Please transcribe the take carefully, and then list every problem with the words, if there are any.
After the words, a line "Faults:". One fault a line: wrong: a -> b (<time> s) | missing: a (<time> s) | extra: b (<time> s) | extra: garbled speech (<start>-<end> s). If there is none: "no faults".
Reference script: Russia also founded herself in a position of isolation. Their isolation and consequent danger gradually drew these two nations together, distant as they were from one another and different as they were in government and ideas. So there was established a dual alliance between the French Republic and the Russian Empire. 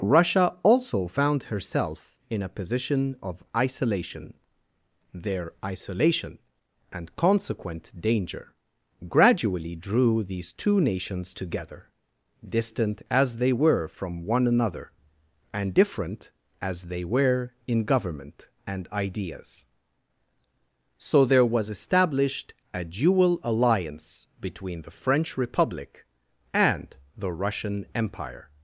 Russia also found herself in a position of isolation. Their isolation and consequent danger gradually drew these two nations together, distant as they were from one another and different as they were in government and ideas. So there was established a dual alliance between the French Republic and the Russian Empire.
Faults:
wrong: founded -> found (1.1 s)